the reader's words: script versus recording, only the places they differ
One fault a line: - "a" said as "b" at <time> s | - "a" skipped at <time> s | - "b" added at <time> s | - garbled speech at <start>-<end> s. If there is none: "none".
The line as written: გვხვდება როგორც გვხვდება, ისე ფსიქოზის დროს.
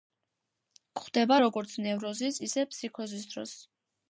- "გვხვდება" said as "ნევროზის" at 1.9 s